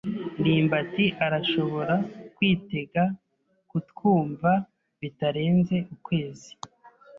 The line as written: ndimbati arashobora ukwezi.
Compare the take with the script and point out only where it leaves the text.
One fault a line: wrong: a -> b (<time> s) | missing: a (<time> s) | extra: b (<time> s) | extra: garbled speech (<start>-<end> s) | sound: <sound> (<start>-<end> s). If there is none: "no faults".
extra: kwitega kutwumva bitarenze (2.4 s)